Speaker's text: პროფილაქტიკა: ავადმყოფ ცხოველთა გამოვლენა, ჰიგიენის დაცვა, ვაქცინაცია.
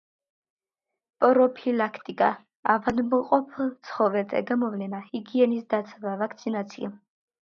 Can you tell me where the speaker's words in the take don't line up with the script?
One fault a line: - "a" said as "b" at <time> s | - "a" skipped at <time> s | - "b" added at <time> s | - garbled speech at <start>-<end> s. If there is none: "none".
none